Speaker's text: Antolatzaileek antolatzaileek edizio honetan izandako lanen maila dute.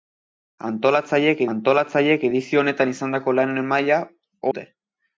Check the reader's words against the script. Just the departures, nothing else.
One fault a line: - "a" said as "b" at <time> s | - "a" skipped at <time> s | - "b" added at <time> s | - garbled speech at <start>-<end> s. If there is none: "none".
none